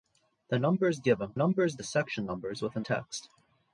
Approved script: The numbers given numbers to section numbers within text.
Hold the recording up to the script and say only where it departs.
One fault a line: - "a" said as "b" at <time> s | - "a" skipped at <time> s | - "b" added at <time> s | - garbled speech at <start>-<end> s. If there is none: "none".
none